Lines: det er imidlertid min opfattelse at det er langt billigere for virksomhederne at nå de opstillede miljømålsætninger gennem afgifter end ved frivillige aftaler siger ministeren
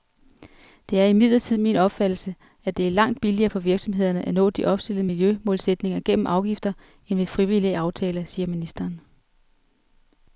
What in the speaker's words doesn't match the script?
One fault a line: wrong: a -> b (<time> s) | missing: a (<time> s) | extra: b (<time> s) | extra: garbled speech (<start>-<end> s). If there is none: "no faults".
no faults